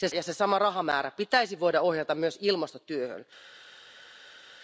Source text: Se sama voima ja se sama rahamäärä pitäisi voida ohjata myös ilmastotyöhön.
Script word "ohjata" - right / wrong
right